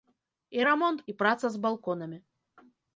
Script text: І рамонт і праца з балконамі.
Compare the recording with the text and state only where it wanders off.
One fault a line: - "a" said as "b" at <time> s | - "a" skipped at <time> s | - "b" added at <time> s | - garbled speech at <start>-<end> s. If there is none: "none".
none